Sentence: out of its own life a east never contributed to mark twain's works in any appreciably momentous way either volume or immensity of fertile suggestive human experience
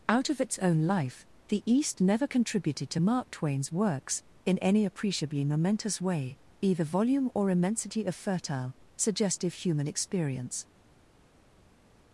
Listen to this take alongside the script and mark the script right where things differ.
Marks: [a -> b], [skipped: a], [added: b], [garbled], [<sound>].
out of its own life [a -> the] east never contributed to mark twain's works in any appreciably momentous way either volume or immensity of fertile suggestive human experience